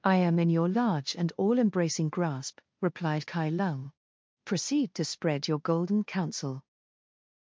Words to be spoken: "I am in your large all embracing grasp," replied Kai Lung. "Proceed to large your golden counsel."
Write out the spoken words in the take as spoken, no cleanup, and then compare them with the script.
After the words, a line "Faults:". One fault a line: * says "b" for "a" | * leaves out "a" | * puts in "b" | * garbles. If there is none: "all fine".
"I am in your large and all embracing grasp," replied Kai Lung. "Proceed to spread your golden counsel."
Faults:
* puts in "and"
* says "spread" for "large"